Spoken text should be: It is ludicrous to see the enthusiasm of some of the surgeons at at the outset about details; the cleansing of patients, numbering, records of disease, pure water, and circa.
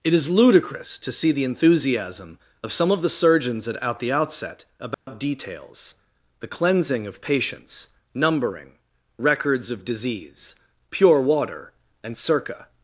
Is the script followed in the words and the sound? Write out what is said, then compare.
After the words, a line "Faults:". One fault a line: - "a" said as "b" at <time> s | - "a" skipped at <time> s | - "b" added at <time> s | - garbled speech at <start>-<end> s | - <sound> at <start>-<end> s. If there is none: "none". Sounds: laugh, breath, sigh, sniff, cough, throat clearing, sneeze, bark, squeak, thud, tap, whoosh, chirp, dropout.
It is ludicrous to see the enthusiasm of some of the surgeons at at the outset about details; the cleansing of patients, numbering, records of disease, pure water, and circa.
Faults:
- dropout at 4.9-5.1 s